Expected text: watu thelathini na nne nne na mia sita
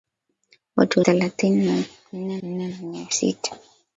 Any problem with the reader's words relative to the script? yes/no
no